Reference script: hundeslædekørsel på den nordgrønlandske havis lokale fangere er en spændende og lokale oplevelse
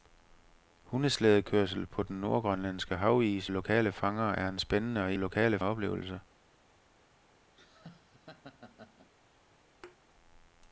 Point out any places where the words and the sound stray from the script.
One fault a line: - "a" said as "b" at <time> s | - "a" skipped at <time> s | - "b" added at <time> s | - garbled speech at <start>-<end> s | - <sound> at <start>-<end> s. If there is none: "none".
- laugh at 7.6-9.1 s
- thud at 9.8-10.0 s